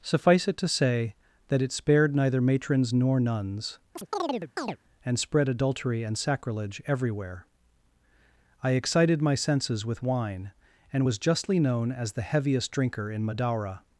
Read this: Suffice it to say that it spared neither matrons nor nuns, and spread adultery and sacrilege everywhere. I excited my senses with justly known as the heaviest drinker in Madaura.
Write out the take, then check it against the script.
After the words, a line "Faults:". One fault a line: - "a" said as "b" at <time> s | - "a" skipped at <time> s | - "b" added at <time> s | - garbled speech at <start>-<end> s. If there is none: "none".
Suffice it to say that it spared neither matrons nor nuns, and spread adultery and sacrilege everywhere. I excited my senses with wine, and was justly known as the heaviest drinker in Madaura.
Faults:
- "wine and was" added at 10.0 s